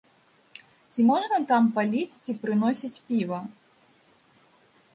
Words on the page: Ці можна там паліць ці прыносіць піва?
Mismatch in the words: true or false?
false